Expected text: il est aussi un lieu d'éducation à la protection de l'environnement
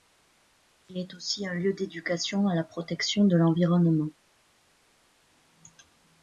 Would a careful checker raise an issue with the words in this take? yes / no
no